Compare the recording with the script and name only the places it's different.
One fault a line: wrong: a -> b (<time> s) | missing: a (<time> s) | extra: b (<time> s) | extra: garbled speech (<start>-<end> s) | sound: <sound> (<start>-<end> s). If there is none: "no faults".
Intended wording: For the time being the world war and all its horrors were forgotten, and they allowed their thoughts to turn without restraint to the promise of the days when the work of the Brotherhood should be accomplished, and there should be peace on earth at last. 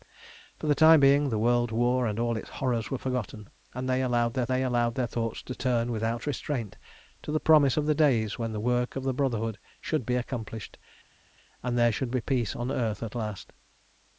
extra: they allowed their (4.5 s)